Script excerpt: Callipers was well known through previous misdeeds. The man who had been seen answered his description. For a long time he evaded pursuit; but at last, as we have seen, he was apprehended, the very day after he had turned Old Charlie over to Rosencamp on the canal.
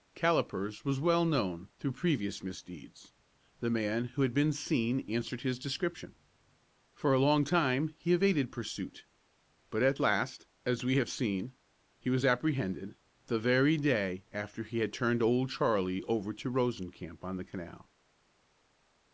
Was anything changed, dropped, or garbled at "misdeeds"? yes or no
no